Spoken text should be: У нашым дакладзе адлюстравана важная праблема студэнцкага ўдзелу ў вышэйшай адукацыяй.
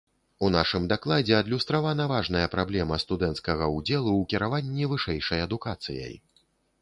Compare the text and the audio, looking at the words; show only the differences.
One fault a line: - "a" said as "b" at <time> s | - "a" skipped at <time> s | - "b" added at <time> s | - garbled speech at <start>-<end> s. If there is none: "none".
- "кіраванні" added at 4.3 s